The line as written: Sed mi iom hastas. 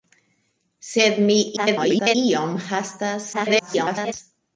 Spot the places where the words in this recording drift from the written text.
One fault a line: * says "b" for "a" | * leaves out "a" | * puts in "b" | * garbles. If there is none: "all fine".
* garbles
* garbles